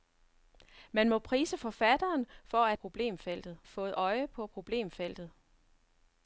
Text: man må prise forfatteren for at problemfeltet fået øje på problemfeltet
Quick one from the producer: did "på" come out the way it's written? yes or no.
yes